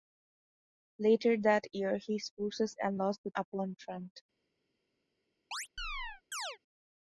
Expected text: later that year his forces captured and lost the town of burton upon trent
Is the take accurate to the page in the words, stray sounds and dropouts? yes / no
no